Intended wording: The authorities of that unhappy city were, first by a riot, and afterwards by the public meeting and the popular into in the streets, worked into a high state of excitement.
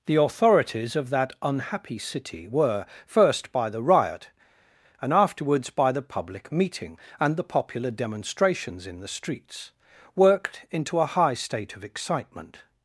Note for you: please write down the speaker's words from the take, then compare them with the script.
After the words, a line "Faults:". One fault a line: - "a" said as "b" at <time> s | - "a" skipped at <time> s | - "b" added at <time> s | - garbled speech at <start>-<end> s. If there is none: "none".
The authorities of that unhappy city were, first by the riot, and afterwards by the public meeting and the popular demonstrations in the streets, worked into a high state of excitement.
Faults:
- "a" said as "the" at 3.7 s
- "into" said as "demonstrations" at 7.9 s